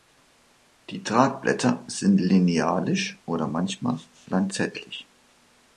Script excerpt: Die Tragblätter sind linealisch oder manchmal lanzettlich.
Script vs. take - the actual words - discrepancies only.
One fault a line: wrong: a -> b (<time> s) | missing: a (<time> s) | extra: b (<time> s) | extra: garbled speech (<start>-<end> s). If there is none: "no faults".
no faults